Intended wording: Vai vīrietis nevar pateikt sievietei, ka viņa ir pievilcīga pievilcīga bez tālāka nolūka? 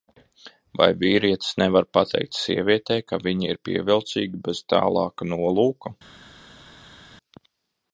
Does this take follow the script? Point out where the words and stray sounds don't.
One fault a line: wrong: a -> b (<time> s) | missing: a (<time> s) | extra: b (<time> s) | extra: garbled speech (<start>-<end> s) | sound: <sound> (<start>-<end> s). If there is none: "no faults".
missing: pievilcīga (4.4 s)